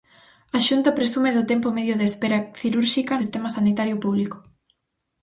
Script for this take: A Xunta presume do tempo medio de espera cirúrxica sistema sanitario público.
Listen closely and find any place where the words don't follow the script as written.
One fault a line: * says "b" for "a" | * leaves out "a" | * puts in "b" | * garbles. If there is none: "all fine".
all fine